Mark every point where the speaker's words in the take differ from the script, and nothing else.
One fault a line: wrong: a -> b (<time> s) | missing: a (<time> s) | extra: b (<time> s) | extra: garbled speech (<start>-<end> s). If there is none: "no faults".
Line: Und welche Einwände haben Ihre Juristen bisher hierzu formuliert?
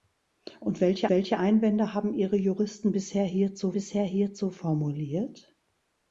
extra: welche (1.1 s)
extra: bisher hierzu (3.7 s)